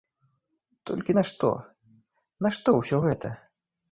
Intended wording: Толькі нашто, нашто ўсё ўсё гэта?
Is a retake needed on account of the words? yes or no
yes